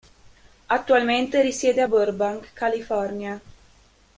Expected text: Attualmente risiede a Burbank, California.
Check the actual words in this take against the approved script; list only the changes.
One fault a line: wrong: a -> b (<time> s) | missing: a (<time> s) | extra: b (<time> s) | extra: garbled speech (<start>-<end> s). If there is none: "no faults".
no faults